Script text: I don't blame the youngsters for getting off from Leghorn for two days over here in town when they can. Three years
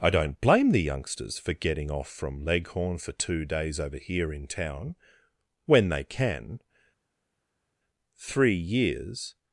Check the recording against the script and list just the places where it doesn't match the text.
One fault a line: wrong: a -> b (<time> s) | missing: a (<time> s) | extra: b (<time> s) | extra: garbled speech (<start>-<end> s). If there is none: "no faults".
no faults